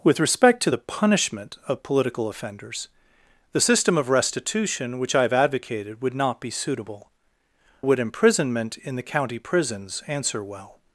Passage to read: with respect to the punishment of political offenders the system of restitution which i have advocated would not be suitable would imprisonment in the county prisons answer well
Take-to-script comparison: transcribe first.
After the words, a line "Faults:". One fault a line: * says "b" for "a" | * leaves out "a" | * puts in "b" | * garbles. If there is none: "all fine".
with respect to the punishment of political offenders the system of restitution which i have advocated would not be suitable would imprisonment in the county prisons answer well
Faults:
all fine